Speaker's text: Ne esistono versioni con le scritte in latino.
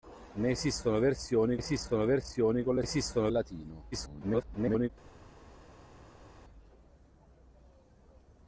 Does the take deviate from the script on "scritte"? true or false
true